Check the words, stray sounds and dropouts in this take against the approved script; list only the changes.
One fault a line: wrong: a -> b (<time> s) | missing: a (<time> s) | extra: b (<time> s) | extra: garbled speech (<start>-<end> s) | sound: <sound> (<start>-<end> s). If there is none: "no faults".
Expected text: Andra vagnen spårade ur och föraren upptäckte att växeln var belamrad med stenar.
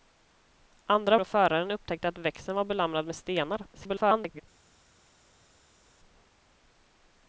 missing: vagnen spårade ur (1.2 s)
extra: garbled speech (3.7-4.4 s)